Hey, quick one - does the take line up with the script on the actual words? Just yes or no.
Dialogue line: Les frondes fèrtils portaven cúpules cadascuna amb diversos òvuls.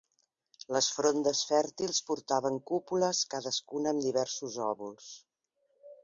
yes